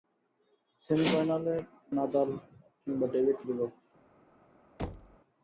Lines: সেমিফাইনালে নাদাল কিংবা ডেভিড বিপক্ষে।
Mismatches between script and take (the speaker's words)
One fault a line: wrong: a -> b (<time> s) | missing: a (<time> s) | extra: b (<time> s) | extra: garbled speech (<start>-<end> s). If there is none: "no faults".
no faults